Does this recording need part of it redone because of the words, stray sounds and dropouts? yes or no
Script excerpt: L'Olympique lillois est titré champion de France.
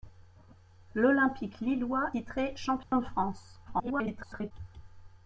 yes